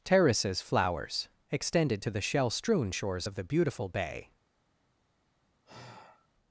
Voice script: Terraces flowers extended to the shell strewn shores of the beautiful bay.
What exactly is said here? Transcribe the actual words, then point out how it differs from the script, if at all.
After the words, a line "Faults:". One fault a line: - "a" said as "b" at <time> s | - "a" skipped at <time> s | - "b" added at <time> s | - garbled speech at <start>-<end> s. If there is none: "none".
Terraces flowers extended to the shell strewn shores of the beautiful bay.
Faults:
none